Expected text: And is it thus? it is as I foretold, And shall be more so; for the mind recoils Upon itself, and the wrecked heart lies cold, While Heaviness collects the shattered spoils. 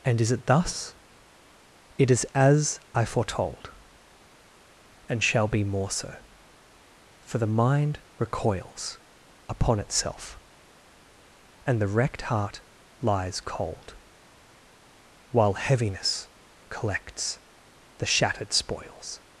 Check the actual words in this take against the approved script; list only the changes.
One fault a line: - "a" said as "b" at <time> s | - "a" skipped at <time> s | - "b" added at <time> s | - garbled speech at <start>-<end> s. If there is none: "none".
none